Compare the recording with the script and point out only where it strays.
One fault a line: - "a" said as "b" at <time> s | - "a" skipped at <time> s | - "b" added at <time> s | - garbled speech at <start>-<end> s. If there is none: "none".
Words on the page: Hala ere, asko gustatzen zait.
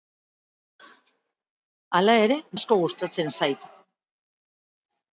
none